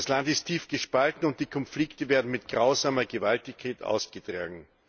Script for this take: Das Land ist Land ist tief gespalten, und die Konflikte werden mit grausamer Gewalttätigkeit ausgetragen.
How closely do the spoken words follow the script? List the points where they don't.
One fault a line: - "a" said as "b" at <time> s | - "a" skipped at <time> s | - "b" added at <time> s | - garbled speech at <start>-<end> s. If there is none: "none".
- "Land ist" skipped at 0.5 s